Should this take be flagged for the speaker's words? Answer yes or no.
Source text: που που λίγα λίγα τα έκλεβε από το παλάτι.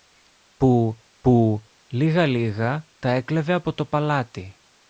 no